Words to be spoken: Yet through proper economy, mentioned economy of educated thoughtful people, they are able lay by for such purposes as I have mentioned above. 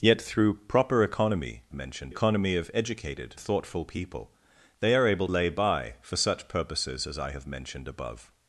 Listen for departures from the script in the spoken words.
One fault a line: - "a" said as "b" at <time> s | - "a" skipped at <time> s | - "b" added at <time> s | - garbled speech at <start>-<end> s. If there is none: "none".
none